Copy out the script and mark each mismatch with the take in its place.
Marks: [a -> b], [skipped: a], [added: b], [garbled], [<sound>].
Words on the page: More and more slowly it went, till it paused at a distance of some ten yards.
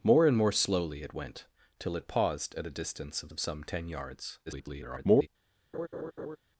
More and more slowly it went, till it paused at a distance of [added: of] some ten yards. [garbled] [laugh]